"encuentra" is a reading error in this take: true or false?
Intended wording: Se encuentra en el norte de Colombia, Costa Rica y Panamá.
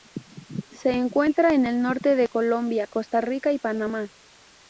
false